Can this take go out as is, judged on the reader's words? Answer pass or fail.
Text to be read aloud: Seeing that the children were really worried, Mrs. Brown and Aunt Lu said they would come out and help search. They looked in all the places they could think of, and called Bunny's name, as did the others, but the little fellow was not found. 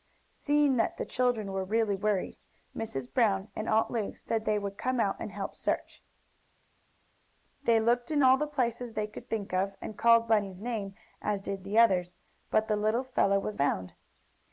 fail